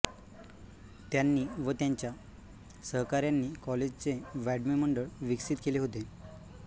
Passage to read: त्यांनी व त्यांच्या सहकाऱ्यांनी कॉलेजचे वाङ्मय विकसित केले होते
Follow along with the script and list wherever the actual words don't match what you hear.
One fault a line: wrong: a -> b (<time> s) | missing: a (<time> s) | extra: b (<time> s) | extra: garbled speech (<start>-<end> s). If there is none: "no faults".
extra: मंडळ (4.8 s)